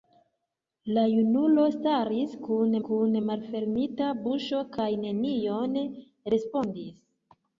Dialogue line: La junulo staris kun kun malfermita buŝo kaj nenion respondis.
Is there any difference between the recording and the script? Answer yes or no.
no